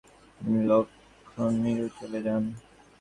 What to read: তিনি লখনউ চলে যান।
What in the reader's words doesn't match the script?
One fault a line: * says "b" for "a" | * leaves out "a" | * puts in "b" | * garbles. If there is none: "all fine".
all fine